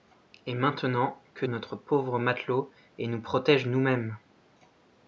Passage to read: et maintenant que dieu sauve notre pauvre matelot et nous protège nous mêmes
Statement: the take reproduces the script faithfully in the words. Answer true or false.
false